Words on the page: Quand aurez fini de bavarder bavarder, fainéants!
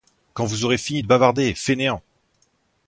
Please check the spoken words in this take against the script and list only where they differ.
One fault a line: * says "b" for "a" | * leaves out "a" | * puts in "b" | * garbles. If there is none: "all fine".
* puts in "vous"
* leaves out "bavarder"